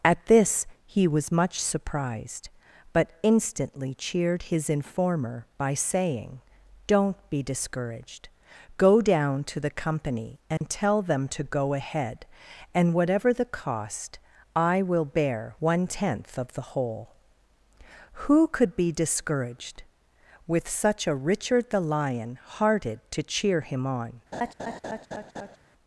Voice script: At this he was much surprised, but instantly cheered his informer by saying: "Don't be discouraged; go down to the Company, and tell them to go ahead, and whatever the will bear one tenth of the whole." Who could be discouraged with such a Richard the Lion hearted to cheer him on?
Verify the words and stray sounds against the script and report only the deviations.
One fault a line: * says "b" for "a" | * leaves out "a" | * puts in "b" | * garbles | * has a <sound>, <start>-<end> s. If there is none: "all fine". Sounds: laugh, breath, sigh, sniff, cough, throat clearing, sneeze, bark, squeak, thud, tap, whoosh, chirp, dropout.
* has a dropout, 10.6-10.6 s
* puts in "cost I"
* has a laugh, 24.3-25.6 s